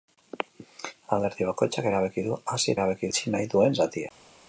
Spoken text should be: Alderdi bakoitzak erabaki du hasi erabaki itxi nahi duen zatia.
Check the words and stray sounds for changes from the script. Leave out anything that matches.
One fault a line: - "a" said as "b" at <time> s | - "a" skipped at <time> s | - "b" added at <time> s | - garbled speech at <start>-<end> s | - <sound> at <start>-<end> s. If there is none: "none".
none